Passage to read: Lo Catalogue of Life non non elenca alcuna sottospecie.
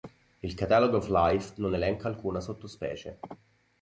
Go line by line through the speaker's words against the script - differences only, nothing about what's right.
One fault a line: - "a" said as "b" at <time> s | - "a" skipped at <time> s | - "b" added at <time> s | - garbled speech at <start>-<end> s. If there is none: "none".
- "Lo" said as "Il" at 0.4 s
- "non" skipped at 1.8 s